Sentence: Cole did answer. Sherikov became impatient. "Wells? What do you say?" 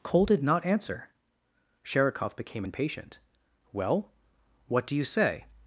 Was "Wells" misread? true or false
true